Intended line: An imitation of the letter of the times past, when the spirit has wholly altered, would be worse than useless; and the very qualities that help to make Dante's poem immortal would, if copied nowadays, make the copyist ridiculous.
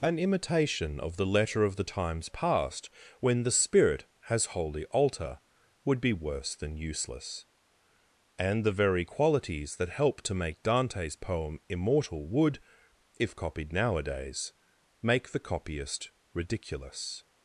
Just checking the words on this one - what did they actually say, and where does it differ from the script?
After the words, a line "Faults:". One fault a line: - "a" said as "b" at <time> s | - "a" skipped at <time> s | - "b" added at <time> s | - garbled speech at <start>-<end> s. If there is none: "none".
An imitation of the letter of the times past, when the spirit has wholly alter, would be worse than useless; and the very qualities that help to make Dante's poem immortal would, if copied nowadays, make the copyist ridiculous.
Faults:
- "altered" said as "alter" at 4.9 s